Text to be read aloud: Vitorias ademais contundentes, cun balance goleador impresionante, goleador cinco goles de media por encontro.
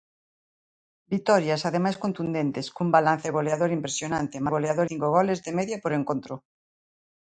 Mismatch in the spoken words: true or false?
false